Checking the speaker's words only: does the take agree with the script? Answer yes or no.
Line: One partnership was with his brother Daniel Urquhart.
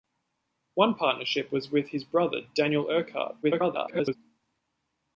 no